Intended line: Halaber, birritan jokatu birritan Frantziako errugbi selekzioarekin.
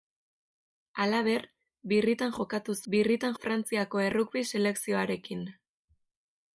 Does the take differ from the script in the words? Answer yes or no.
no